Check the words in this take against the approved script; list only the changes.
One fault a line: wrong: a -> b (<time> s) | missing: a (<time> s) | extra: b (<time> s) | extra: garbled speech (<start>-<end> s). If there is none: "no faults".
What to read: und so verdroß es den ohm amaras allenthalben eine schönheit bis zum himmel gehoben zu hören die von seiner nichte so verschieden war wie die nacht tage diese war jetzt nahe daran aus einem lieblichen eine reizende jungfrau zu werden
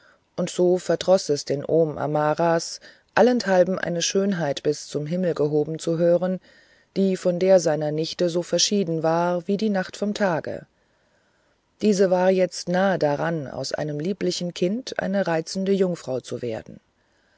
extra: der (7.4 s)
extra: vom (10.0 s)
extra: kind (14.5 s)